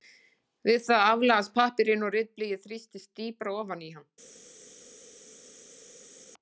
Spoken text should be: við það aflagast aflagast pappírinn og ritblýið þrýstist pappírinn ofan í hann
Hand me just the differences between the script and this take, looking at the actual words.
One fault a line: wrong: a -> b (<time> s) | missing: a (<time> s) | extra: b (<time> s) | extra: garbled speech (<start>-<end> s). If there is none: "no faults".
missing: aflagast (1.5 s)
wrong: pappírinn -> dýpra (3.2 s)